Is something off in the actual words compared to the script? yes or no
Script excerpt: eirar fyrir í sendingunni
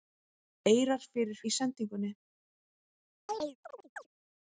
no